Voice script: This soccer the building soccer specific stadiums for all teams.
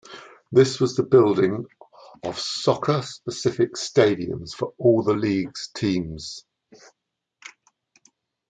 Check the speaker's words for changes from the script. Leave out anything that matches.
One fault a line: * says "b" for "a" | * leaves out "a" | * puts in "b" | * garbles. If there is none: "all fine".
* says "was" for "soccer"
* puts in "of"
* puts in "the league's"